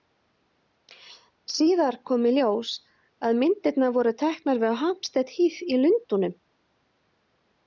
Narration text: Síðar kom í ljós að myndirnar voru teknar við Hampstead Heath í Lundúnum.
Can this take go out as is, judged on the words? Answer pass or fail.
pass